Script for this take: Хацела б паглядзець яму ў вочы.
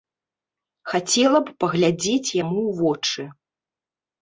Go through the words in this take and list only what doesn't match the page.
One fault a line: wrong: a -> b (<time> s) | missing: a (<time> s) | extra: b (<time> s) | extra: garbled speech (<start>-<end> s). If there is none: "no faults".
no faults